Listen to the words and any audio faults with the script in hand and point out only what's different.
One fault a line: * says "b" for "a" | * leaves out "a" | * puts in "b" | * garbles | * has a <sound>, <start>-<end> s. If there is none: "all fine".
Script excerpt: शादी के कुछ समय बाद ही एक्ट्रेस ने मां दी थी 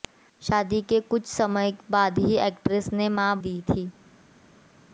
all fine